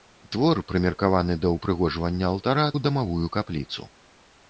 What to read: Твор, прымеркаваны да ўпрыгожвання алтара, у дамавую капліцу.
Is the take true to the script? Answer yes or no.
yes